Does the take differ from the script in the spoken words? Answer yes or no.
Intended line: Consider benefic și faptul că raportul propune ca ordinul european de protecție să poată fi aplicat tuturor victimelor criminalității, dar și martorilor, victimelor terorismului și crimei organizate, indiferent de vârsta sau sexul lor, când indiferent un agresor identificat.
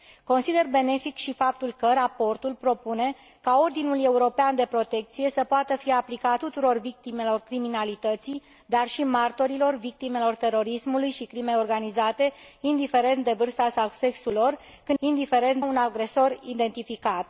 no